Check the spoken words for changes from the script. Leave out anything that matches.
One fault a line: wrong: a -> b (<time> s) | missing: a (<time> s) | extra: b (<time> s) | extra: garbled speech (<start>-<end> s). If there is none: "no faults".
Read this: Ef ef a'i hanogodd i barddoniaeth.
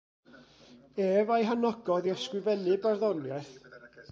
missing: ef (1.3 s)
extra: ysgrifennu (2.2 s)